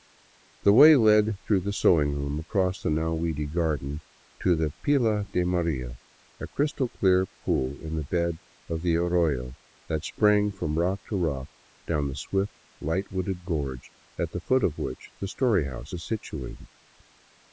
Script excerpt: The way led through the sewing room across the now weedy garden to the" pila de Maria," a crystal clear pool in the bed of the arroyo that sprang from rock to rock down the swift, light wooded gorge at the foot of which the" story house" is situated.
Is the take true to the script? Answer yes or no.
yes